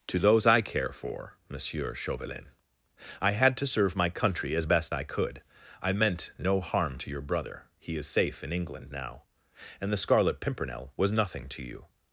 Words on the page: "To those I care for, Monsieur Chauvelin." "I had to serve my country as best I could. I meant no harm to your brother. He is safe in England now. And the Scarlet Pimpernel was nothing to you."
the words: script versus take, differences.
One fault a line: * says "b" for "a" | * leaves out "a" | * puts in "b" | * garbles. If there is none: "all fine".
all fine